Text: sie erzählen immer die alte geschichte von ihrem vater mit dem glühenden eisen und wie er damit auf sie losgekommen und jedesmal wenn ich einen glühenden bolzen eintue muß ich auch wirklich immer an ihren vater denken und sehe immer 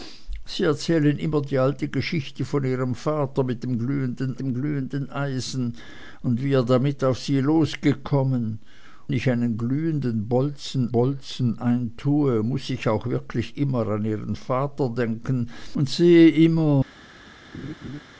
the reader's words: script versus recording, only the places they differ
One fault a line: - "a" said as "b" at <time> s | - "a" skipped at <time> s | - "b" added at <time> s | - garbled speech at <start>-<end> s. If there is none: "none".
- "dem glühenden" added at 4.4 s
- "und jedesmal wenn" skipped at 8.6 s
- "bolzen" added at 10.9 s